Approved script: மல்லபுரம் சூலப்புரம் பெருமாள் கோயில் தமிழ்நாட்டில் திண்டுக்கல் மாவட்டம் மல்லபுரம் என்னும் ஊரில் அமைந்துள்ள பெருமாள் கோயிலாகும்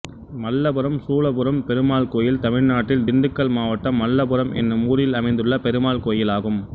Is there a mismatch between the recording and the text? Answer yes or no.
no